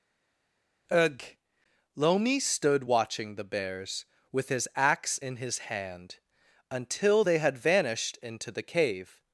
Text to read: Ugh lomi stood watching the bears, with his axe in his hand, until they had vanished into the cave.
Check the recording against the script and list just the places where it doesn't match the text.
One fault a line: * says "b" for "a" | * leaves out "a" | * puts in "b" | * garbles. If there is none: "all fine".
all fine